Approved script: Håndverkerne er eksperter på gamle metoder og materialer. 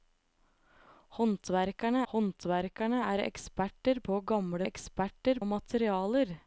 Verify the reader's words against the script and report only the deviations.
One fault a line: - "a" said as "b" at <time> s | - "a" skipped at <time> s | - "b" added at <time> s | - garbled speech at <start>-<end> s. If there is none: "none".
- "håndverkerne" added at 2.1 s
- "metoder" said as "eksperter" at 4.7 s